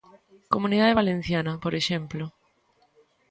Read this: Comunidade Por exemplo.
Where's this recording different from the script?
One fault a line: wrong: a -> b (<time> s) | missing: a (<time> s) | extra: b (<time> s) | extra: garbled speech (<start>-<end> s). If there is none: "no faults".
extra: Valenciana (1.0 s)